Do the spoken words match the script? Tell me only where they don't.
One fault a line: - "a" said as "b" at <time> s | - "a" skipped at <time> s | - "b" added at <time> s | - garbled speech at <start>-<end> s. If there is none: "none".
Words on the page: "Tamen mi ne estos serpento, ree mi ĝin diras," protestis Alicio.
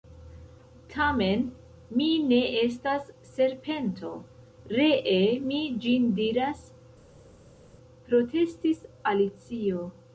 - "estos" said as "estas" at 2.6 s